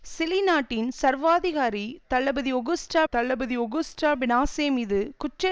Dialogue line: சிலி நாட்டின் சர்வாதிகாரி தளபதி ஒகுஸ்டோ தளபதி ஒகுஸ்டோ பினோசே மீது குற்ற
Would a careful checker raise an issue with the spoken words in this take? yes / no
no